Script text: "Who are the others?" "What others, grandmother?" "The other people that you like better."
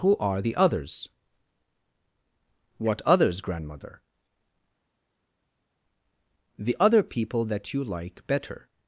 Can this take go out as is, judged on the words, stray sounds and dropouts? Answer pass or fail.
pass